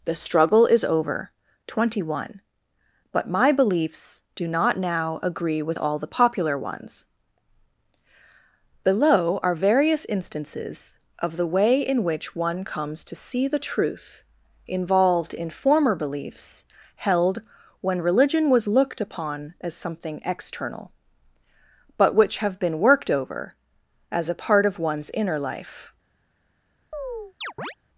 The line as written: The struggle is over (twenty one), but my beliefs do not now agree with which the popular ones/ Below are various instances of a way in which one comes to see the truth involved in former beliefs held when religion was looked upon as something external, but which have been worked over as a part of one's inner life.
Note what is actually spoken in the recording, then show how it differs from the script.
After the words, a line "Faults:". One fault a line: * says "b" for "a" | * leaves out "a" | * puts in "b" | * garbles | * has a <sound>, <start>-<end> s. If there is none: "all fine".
The struggle is over (twenty one), but my beliefs do not now agree with all the popular ones/ Below are various instances of the way in which one comes to see the truth involved in former beliefs held when religion was looked upon as something external, but which have been worked over as a part of one's inner life.
Faults:
* says "all" for "which"
* says "the" for "a"
* has a chirp, 26.9-27.7 s